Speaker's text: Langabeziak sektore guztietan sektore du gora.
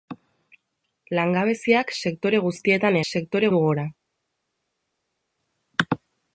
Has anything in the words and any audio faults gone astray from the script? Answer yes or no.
no